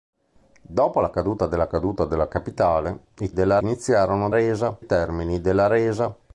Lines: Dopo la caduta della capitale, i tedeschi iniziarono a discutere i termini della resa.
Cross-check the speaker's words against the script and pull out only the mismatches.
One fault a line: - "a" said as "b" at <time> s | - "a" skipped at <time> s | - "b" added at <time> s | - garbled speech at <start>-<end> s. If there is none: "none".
- "caduta della" added at 1.7 s
- "tedeschi" said as "della" at 3.3 s
- "discutere" said as "resa" at 4.3 s